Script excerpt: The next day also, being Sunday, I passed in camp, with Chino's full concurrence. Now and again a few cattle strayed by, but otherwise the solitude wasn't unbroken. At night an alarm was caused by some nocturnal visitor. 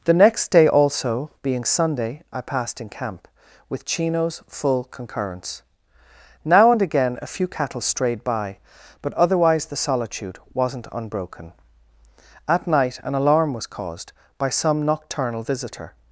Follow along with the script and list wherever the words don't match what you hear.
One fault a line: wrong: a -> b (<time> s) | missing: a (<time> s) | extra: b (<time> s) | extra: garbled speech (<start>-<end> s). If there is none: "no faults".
no faults